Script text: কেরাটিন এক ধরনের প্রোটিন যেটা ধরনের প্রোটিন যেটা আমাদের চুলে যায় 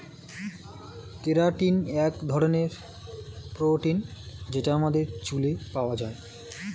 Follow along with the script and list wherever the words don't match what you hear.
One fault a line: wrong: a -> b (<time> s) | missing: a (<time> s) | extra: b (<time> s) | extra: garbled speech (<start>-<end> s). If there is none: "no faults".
missing: ধরনের প্রোটিন যেটা (4.7 s)
extra: পাওয়া (5.7 s)